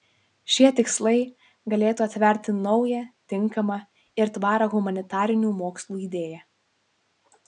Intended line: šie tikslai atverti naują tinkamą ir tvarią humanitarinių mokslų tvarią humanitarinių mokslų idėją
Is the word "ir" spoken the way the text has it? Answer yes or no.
yes